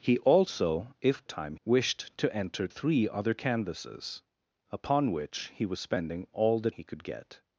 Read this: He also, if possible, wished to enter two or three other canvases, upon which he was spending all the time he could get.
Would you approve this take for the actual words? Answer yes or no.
no